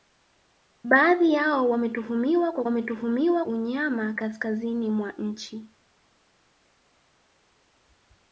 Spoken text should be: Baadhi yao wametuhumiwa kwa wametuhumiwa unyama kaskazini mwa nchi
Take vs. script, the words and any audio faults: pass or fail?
pass